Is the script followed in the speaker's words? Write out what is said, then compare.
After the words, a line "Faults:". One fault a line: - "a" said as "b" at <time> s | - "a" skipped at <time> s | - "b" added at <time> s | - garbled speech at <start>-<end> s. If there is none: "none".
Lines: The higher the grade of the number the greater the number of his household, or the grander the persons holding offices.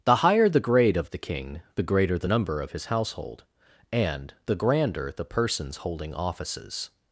The higher the grade of the king the greater the number of his household, and the grander the persons holding offices.
Faults:
- "number" said as "king" at 1.2 s
- "or" said as "and" at 3.9 s